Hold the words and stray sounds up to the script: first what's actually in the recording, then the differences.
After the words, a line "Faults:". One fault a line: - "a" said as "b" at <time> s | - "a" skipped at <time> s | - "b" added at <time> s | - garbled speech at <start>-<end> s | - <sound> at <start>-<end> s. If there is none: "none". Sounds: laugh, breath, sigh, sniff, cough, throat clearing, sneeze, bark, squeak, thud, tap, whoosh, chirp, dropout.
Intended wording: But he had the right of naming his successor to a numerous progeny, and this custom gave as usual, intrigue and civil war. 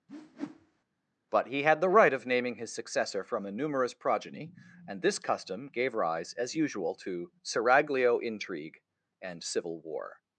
But he had the right of naming his successor from a numerous progeny, and this custom gave rise, as usual, to seraglio intrigue and civil war.
Faults:
- whoosh at 0.1-0.8 s
- "to" said as "from" at 3.2 s
- "rise" added at 5.9 s
- "to seraglio" added at 7.0 s